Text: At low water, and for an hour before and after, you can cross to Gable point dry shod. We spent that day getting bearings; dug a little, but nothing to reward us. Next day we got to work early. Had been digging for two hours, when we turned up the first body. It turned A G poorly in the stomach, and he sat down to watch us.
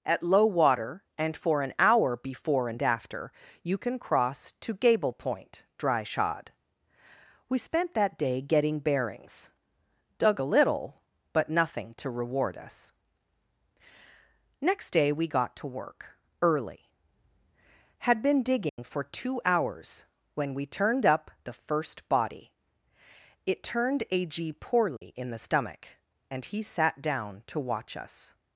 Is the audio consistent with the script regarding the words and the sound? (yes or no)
no